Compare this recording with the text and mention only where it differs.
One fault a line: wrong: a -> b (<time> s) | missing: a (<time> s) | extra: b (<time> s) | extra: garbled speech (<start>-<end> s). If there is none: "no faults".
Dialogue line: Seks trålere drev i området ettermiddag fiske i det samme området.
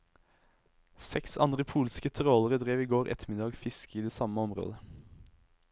extra: andre polske (1.4 s)
wrong: området -> går (2.9 s)